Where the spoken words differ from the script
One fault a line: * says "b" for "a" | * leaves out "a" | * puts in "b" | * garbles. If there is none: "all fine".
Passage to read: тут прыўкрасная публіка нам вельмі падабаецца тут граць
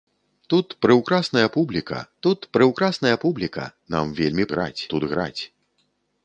* puts in "тут прыўкрасная публіка"
* says "граць" for "падабаецца"